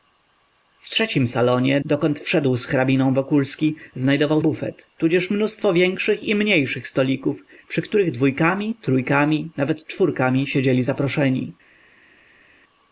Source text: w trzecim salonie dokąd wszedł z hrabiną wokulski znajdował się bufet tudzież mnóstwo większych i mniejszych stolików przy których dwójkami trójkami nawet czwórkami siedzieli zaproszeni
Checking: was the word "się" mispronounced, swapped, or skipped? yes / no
yes